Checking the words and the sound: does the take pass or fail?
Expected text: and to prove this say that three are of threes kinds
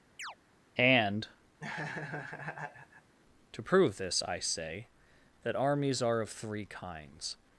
fail